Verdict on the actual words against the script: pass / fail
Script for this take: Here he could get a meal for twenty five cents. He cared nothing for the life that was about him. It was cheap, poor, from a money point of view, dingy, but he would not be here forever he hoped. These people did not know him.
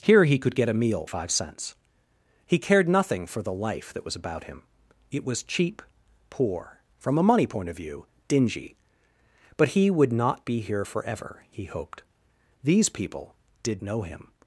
fail